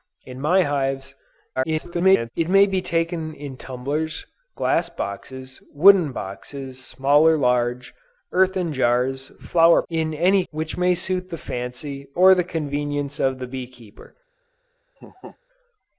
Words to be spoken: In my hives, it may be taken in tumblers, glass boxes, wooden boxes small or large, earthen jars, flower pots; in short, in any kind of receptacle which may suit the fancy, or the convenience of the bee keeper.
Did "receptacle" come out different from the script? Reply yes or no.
yes